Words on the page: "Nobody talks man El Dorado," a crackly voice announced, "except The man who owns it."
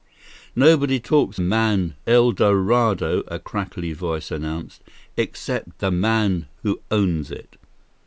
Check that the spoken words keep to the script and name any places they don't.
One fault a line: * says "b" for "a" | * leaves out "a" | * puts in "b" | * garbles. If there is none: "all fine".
all fine